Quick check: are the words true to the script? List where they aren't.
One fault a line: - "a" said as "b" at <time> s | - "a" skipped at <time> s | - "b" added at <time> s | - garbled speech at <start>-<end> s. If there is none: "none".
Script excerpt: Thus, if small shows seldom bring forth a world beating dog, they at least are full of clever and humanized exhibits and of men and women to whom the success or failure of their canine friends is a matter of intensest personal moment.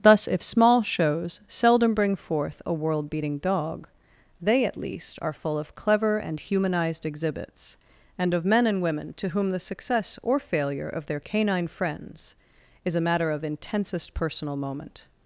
none